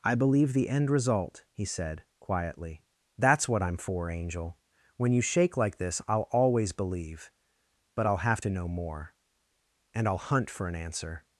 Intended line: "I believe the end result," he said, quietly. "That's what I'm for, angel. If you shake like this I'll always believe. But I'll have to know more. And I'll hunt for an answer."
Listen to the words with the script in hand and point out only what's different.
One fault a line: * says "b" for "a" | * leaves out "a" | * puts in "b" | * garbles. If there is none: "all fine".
* says "When" for "If"